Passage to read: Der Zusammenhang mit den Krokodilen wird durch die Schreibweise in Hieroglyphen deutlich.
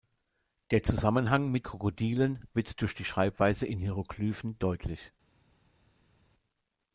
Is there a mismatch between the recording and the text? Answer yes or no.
yes